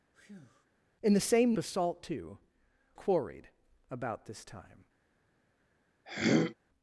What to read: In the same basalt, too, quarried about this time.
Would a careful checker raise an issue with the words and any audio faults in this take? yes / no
yes